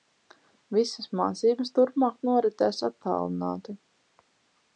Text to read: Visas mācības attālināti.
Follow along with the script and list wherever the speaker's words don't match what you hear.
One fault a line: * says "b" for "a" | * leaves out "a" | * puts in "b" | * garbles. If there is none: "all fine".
* puts in "turpmāk noritēs"